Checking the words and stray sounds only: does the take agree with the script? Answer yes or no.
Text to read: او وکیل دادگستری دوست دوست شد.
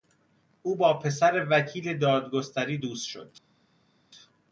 no